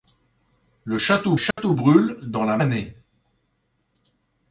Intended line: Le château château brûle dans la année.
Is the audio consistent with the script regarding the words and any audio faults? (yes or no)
no